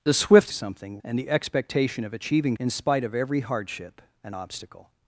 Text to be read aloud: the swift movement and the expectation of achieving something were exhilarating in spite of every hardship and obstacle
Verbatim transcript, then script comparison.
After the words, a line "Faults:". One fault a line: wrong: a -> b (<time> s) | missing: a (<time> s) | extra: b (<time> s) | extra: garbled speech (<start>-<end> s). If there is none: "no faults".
the swift something and the expectation of achieving in spite of every hardship and obstacle
Faults:
wrong: movement -> something (0.5 s)
missing: something were exhilarating (2.6 s)